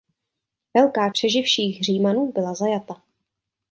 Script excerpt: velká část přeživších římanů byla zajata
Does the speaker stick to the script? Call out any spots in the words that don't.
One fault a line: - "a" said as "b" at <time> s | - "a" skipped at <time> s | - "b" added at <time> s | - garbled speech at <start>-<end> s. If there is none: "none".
- "část" skipped at 1.1 s